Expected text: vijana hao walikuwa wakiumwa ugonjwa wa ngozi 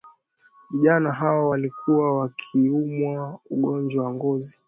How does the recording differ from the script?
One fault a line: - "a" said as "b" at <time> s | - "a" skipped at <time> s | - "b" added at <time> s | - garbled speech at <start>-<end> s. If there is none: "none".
none